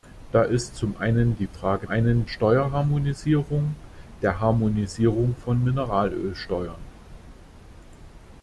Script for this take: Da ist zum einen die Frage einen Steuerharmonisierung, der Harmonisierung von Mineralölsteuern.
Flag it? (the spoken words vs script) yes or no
no